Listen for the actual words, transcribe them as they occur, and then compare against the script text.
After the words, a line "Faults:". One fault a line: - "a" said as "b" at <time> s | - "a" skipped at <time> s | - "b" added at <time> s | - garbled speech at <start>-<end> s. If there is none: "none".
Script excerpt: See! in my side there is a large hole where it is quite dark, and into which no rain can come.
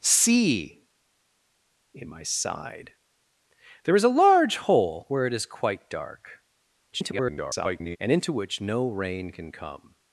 See! in my side there is a large hole where it is quite dark, [garbled] and into which no rain can come.
Faults:
- garbled speech at 6.9-8.0 s